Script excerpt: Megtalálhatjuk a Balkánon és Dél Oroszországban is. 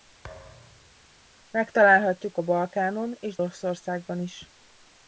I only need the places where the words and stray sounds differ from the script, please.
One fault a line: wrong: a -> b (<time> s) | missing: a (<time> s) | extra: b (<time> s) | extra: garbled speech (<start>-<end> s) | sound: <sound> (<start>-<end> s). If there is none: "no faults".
sound: thud (0.2-1.0 s)
missing: Dél (3.4 s)